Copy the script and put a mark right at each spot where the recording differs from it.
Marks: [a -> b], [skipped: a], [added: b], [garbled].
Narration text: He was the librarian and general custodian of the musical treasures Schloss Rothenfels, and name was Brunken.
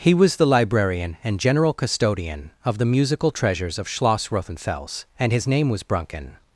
He was the librarian and general custodian of the musical treasures [added: of] Schloss Rothenfels, and [added: his] name was Brunken.